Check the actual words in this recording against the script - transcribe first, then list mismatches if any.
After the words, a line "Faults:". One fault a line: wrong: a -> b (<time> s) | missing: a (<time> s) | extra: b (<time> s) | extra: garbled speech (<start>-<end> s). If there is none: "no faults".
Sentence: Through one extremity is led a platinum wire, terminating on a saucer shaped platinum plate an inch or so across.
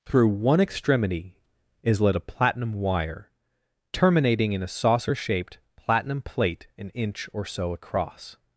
Through one extremity is led a platinum wire, terminating in a saucer shaped platinum plate an inch or so across.
Faults:
wrong: on -> in (4.5 s)